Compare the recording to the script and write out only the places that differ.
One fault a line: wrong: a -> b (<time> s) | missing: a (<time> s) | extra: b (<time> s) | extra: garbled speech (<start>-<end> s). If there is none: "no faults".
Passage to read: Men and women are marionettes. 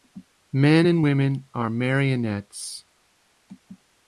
no faults